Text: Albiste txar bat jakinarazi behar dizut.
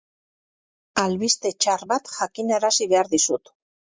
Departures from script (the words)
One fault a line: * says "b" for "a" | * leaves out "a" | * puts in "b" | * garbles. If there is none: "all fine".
all fine